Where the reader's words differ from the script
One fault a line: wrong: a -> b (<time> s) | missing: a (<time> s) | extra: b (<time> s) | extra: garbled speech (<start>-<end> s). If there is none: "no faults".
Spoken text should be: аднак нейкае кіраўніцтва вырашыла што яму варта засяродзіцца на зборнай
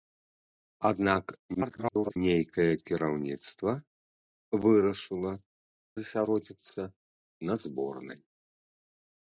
extra: garbled speech (1.5-2.2 s)
missing: што яму варта (5.3 s)